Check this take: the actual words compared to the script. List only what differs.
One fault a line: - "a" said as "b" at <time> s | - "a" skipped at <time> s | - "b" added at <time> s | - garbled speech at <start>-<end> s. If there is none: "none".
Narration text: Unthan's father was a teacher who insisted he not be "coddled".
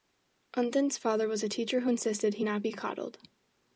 none